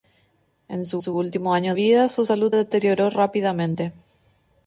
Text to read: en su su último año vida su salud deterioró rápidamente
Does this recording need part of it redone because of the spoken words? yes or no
no